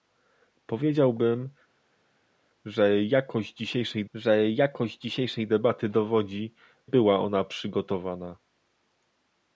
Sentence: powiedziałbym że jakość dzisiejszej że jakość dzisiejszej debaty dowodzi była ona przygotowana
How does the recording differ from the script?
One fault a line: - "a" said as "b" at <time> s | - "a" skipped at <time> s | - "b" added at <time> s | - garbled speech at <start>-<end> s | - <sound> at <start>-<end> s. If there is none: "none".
none